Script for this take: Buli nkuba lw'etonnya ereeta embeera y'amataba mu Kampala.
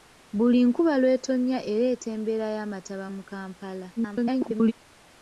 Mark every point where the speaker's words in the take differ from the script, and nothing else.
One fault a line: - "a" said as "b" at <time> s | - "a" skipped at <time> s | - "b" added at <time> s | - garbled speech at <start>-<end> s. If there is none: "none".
- garbled speech at 4.0-4.7 s